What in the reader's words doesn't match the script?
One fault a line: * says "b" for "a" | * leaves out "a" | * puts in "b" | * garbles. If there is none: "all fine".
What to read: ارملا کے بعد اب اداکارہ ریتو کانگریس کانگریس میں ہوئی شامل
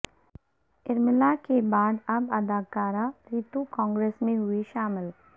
* leaves out "کانگریس"